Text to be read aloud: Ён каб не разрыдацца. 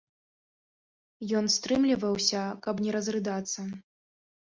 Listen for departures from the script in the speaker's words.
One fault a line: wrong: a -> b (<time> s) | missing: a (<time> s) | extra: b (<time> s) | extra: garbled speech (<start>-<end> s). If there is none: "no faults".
extra: стрымліваўся (1.6 s)